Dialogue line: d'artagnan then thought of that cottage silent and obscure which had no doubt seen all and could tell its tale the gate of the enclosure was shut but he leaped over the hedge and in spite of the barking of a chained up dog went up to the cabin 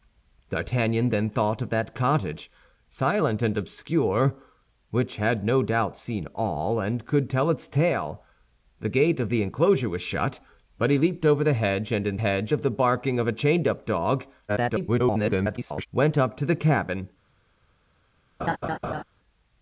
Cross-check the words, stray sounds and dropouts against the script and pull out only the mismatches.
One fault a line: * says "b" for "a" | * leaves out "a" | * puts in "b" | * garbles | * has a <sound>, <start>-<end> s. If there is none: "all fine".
* says "hedge" for "spite"
* garbles
* has a laugh, 18.4-19.0 s